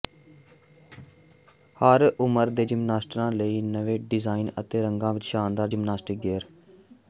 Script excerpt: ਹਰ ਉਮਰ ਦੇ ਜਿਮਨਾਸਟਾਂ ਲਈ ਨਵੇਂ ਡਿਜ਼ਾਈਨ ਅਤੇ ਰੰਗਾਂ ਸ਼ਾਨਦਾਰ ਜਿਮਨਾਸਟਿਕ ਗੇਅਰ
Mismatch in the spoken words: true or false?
true